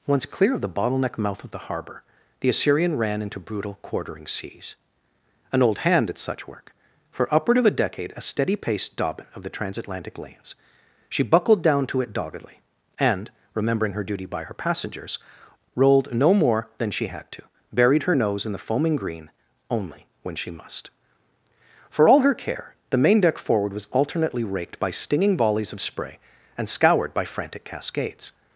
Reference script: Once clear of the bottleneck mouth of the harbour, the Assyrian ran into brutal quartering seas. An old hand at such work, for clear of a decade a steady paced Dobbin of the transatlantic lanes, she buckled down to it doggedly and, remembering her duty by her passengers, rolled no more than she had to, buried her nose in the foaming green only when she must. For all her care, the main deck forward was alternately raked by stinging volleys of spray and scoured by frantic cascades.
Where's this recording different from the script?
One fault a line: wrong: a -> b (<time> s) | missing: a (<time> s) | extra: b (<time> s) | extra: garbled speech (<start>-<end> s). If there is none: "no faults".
wrong: clear -> upward (7.3 s)